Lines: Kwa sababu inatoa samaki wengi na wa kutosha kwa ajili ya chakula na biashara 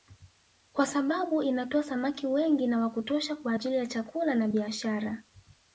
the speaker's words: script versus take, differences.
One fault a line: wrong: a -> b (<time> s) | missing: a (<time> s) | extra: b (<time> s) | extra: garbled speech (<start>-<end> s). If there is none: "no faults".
no faults